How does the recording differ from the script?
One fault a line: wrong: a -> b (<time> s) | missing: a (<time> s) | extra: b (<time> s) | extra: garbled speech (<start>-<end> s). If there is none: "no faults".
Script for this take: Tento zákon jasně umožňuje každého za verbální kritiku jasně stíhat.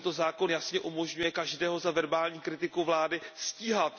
wrong: jasně -> vlády (2.8 s)